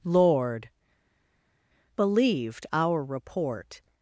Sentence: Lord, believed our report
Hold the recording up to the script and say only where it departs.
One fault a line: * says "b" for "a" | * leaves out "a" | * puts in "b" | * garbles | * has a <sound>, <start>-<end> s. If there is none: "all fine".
all fine